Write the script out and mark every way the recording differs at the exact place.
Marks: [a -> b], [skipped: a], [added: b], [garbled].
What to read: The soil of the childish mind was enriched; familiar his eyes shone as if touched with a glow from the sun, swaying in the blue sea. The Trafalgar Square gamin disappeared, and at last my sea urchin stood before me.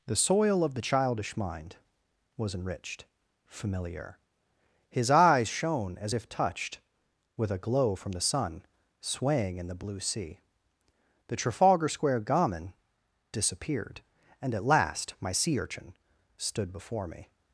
The soil of the childish mind was enriched; familiar his eyes shone as if touched with a glow from the sun, swaying in the blue sea. The Trafalgar Square gamin disappeared, and at last my sea urchin stood before me.